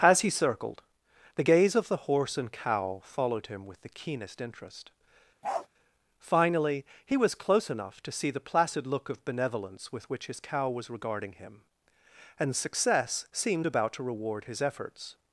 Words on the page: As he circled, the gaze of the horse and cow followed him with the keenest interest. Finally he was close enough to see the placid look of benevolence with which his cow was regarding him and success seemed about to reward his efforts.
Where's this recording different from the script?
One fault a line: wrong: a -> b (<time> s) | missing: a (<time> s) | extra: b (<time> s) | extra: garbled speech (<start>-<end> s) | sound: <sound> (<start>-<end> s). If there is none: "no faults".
sound: bark (5.4-5.7 s)